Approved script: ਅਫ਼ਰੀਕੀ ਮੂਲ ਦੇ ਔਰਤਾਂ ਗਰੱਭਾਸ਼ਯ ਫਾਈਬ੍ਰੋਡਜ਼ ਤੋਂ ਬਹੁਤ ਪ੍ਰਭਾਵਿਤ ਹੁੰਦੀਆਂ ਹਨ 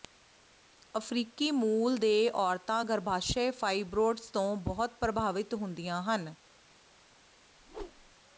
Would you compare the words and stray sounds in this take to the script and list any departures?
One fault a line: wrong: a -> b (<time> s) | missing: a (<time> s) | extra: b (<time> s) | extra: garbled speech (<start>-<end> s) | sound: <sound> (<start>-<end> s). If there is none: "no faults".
sound: whoosh (7.6-8.2 s)